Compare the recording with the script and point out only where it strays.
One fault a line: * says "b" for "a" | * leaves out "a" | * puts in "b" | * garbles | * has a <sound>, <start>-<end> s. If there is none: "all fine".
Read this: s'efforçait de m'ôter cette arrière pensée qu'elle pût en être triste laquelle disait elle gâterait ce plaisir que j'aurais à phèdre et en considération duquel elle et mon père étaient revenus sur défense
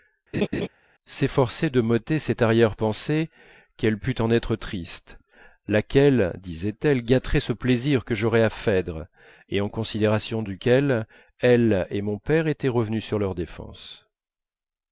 * has a laugh, 0.3-0.7 s
* puts in "leur"